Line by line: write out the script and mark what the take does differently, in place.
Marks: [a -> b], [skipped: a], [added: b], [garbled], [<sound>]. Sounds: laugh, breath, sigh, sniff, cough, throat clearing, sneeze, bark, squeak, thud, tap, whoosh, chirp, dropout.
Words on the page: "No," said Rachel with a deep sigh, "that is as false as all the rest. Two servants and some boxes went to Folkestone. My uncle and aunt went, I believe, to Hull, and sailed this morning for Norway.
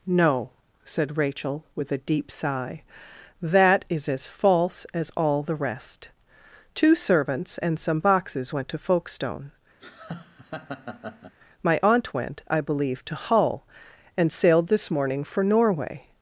"No," said Rachel with a deep sigh, "that is as false as all the rest. Two servants and some boxes went to Folkestone. [laugh] My [skipped: uncle and] aunt went, I believe, to Hull, and sailed this morning for Norway.